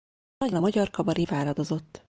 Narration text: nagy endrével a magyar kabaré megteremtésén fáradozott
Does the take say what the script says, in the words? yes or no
no